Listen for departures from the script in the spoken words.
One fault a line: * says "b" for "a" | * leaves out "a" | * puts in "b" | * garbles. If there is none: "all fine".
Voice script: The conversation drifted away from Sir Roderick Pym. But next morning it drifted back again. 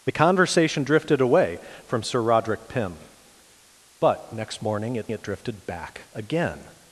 * puts in "it"